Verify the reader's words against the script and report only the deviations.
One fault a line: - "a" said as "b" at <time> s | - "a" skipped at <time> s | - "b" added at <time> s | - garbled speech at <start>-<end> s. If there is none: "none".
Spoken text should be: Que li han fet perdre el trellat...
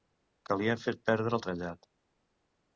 none